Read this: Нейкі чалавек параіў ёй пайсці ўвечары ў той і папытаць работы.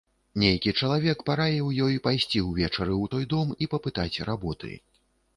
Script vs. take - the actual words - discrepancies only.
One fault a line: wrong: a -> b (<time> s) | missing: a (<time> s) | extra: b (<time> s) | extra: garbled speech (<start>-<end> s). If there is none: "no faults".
extra: дом (3.3 s)